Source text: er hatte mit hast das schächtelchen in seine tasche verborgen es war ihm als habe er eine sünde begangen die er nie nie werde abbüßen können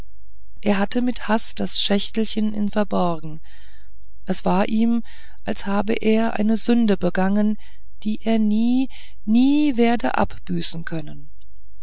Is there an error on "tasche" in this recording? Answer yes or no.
yes